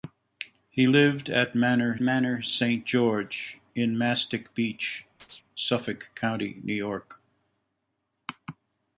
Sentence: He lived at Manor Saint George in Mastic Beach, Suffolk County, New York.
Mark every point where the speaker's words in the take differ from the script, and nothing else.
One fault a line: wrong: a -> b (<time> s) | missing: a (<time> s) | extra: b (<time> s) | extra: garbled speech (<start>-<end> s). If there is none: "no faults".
extra: Manor (2.0 s)